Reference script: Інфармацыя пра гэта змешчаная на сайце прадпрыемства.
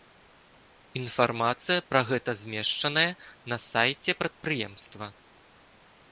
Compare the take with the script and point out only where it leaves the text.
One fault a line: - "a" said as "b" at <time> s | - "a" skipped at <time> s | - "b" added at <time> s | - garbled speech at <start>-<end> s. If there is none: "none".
none